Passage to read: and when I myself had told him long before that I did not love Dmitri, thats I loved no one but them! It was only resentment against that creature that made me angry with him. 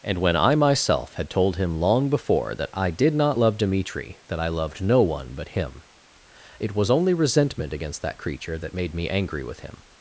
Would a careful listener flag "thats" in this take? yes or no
yes